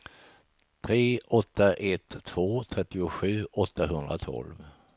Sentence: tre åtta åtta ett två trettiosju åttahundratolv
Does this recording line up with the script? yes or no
no